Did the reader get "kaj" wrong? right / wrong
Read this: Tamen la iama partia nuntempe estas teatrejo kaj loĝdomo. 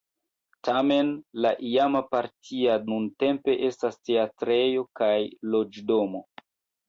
right